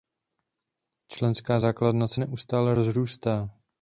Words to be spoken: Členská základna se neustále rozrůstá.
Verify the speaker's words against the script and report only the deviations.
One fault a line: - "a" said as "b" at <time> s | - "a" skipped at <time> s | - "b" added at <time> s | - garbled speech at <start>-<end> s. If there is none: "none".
none